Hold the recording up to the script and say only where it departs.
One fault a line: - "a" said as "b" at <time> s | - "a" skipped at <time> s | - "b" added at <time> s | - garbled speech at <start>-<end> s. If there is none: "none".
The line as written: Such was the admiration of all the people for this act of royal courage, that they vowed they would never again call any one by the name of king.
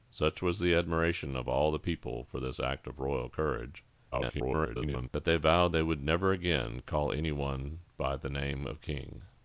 - garbled speech at 4.1-5.1 s